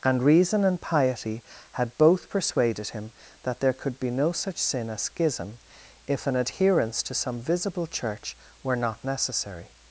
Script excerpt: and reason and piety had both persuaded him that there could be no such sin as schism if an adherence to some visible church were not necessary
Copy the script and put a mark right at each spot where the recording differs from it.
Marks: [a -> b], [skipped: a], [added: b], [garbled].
and reason and piety had both persuaded him that there could be no such sin as schism if an adherence to some visible church were not necessary